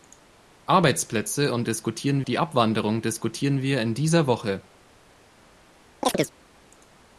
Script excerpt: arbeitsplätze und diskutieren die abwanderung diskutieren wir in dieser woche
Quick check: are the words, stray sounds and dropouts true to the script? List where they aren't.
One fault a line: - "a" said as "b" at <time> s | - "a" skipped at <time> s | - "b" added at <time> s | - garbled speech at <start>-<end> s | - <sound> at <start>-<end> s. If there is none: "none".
- chirp at 6.0-6.3 s